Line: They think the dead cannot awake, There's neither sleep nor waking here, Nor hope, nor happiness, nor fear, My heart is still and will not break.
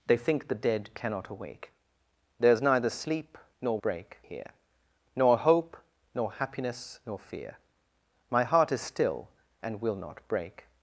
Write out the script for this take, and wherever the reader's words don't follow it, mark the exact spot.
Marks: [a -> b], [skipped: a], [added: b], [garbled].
They think the dead cannot awake, There's neither sleep nor [waking -> break] here, Nor hope, nor happiness, nor fear, My heart is still and will not break.